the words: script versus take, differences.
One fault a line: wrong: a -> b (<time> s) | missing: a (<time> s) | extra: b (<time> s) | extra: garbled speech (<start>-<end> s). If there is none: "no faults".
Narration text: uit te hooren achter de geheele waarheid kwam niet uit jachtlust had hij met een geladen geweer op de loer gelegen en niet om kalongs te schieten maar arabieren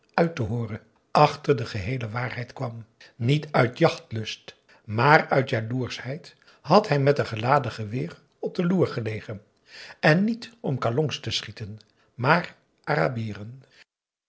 extra: maar uit jaloerschheid (4.8 s)